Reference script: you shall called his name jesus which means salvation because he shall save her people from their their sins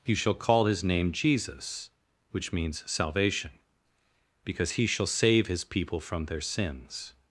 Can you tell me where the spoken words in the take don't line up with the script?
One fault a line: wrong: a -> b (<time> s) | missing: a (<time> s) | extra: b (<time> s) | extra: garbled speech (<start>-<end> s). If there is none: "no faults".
wrong: called -> call (0.3 s)
wrong: her -> his (5.5 s)
missing: their (6.4 s)